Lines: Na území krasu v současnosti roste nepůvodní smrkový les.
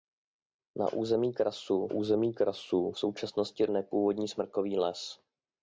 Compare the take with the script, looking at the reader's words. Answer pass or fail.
fail